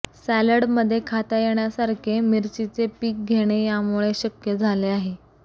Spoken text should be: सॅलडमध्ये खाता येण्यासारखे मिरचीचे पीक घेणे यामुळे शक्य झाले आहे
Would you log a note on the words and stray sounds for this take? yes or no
no